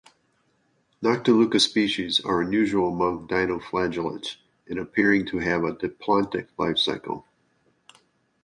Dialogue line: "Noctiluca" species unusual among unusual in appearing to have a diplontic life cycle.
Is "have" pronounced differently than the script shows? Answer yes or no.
no